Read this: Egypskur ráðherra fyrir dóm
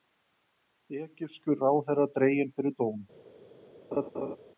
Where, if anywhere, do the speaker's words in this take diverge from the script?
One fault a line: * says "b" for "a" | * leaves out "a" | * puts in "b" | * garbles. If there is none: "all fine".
* puts in "dreginn"